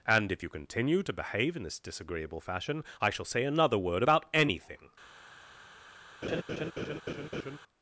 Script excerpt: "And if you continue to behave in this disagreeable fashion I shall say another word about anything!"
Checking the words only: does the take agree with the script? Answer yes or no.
yes